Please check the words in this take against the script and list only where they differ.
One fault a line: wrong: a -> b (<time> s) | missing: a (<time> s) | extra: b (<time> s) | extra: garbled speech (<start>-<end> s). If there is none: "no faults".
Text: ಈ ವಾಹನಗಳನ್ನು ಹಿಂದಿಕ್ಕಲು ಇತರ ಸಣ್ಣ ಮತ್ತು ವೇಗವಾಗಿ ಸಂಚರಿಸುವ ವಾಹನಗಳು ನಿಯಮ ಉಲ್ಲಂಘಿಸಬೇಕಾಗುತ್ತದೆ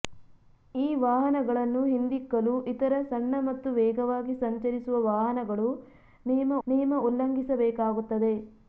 extra: ನಿಯಮ (6.7 s)